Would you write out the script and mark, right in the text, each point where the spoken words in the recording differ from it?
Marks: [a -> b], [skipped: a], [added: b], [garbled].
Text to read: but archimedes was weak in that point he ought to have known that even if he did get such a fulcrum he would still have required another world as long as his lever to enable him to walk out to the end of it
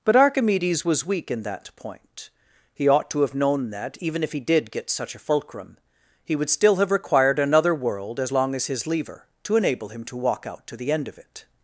but archimedes was weak in that point he ought to have known that even if he did get such a fulcrum he would still have required another world as long as his lever to enable him to walk out to the end of it